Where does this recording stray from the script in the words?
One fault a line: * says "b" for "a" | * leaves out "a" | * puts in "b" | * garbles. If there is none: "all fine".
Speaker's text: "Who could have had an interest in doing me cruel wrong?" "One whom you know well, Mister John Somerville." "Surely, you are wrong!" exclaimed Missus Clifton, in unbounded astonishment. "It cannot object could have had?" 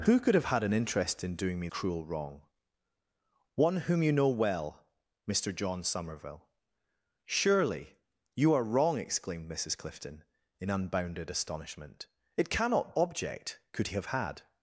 all fine